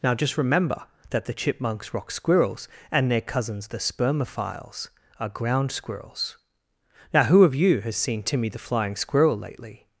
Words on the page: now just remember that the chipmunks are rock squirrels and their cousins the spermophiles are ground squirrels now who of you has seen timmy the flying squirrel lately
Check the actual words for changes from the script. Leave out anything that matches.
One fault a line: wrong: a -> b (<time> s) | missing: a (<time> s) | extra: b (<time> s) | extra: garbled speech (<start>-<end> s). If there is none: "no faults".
missing: are (1.9 s)